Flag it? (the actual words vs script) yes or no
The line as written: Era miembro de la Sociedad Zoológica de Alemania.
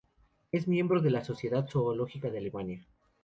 yes